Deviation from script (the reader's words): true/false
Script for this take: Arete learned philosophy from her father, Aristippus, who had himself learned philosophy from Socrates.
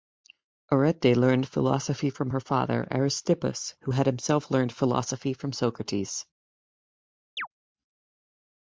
false